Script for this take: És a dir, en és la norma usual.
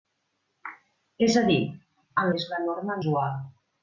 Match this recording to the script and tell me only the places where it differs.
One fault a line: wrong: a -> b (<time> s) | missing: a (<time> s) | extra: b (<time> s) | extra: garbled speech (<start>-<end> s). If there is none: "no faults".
no faults